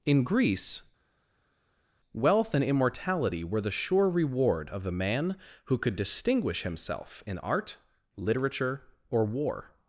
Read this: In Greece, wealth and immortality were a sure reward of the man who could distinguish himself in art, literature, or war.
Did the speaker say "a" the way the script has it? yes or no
no